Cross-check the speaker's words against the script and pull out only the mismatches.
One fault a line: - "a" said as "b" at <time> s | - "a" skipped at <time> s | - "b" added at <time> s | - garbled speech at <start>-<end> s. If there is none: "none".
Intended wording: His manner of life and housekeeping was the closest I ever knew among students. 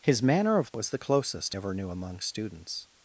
- "life and housekeeping" skipped at 0.7 s
- "I" skipped at 1.6 s